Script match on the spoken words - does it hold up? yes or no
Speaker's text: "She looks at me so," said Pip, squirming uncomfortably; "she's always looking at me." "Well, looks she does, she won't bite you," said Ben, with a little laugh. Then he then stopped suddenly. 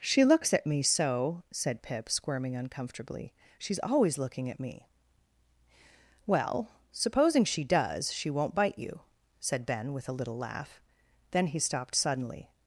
no